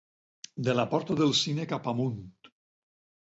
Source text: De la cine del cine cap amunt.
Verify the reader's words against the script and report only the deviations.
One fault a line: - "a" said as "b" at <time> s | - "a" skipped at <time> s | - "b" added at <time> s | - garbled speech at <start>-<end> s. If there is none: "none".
- "cine" said as "porta" at 0.9 s